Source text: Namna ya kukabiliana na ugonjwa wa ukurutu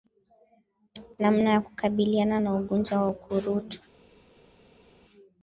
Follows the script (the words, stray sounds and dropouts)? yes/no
yes